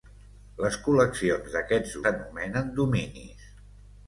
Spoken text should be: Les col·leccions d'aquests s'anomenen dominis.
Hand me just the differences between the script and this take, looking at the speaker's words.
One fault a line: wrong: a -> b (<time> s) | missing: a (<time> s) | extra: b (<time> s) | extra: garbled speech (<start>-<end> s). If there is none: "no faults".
no faults